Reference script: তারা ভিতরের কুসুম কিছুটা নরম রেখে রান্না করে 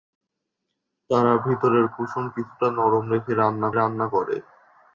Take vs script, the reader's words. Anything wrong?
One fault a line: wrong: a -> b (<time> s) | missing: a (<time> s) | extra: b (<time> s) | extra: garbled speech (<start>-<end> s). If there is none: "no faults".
extra: রান্না (3.7 s)